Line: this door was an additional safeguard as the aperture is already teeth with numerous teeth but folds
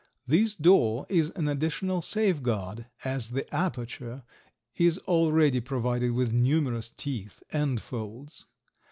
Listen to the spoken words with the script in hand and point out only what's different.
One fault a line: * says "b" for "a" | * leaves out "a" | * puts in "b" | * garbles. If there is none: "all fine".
* says "is" for "was"
* says "provided" for "teeth"
* says "and" for "but"